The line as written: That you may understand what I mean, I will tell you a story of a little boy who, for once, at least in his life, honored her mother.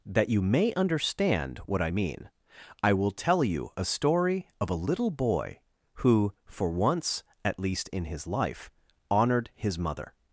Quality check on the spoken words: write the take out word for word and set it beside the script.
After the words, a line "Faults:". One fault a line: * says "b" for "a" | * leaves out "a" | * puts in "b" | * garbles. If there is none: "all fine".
That you may understand what I mean, I will tell you a story of a little boy who, for once, at least in his life, honored his mother.
Faults:
* says "his" for "her"